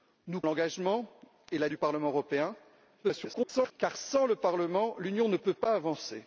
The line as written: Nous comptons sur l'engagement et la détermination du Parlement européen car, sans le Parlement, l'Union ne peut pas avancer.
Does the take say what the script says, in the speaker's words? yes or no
no